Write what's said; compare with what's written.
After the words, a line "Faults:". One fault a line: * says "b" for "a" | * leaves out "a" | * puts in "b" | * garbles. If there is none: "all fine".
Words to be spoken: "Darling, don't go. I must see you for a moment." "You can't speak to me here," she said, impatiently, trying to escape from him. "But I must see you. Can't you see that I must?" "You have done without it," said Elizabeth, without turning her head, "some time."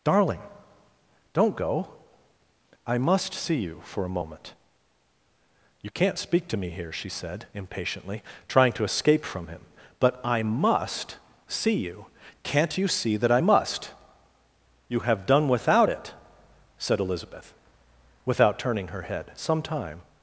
"Darling, don't go. I must see you for a moment." "You can't speak to me here," she said, impatiently, trying to escape from him. "But I must see you. Can't you see that I must?" "You have done without it," said Elizabeth, without turning her head, "some time."
Faults:
all fine